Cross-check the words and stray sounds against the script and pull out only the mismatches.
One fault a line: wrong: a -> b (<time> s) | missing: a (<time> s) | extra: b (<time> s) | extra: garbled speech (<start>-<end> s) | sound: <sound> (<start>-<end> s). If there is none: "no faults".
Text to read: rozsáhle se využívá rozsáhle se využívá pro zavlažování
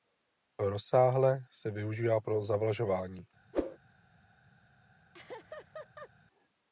missing: rozsáhle se využívá (2.2 s)
sound: whoosh (3.5-3.8 s)
sound: laugh (5.1-6.1 s)